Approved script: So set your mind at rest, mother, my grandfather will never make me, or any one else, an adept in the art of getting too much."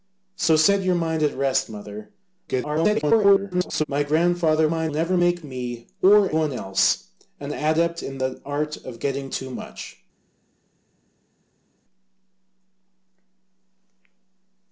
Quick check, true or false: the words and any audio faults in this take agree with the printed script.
false